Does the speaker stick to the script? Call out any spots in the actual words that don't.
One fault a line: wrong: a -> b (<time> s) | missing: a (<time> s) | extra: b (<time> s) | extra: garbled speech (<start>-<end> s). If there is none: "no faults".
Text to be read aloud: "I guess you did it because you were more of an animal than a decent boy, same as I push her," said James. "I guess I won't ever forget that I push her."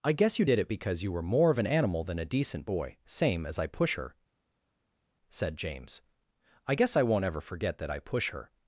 no faults